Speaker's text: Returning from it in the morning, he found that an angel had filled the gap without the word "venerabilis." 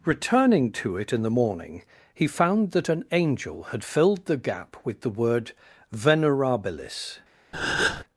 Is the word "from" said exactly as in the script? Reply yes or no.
no